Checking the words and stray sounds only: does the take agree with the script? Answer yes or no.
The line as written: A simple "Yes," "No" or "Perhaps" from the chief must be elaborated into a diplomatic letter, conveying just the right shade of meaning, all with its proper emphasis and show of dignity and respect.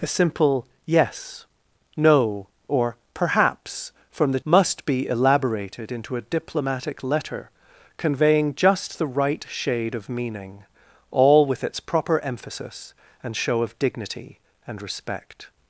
no